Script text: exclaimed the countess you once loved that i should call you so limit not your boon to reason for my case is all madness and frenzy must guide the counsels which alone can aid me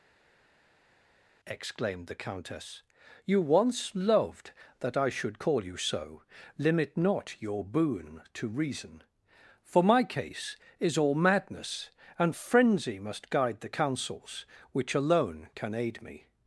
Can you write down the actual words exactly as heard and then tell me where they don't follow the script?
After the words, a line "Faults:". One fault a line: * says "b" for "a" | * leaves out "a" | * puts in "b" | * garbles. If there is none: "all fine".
exclaimed the countess you once loved that i should call you so limit not your boon to reason for my case is all madness and frenzy must guide the counsels which alone can aid me
Faults:
all fine